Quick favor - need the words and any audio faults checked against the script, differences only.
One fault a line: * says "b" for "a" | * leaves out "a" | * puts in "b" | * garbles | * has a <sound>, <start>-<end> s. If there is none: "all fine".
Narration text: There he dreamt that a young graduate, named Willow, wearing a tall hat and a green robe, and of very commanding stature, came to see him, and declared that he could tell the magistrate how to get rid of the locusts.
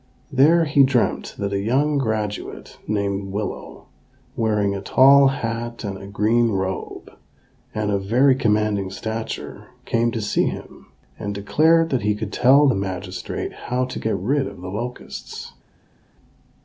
all fine